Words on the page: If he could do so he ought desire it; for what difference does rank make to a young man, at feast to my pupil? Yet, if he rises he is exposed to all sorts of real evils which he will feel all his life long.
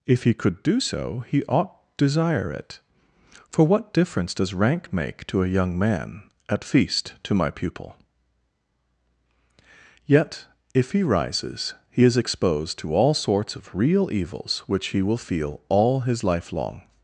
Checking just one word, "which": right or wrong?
right